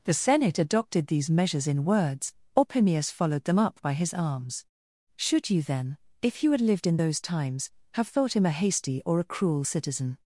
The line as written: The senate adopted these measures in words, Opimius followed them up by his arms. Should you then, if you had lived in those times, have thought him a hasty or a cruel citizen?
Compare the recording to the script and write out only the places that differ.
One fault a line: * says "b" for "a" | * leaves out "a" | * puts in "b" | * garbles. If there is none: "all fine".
all fine